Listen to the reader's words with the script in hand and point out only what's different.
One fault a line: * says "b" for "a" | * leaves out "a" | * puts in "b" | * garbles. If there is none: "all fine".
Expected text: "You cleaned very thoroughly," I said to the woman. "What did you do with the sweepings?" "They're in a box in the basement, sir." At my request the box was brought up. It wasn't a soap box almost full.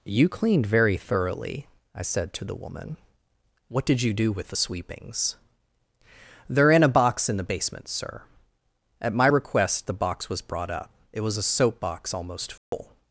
* says "was" for "wasn't"